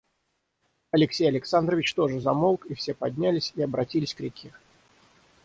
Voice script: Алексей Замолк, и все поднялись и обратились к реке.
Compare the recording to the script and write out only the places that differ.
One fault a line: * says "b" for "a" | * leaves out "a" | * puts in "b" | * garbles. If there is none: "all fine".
* puts in "Александрович тоже"